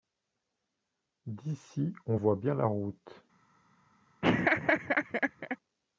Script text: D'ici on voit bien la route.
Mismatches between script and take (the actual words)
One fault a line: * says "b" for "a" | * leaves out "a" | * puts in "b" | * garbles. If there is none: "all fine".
all fine